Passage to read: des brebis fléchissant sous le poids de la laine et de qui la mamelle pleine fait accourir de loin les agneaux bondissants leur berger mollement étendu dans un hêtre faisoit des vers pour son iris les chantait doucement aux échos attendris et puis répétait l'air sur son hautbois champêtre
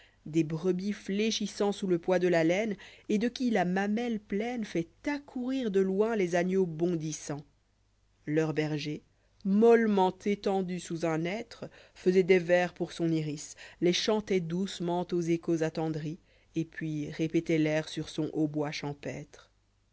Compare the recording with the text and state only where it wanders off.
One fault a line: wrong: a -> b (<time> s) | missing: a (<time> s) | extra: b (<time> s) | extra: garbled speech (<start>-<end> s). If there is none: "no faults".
wrong: dans -> sous (10.8 s)